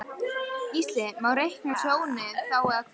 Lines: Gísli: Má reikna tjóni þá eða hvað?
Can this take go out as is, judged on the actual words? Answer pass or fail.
pass